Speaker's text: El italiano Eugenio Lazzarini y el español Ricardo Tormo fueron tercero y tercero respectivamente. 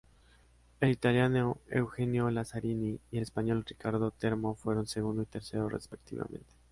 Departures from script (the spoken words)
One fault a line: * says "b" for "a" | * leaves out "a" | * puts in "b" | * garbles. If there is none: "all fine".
* says "segundo" for "tercero"